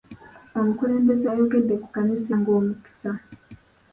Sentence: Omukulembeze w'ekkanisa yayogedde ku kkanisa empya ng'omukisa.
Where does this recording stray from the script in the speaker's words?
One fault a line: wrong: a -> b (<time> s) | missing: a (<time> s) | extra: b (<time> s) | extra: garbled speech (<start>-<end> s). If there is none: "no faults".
missing: w'ekkanisa (1.3 s)
missing: empya (2.3 s)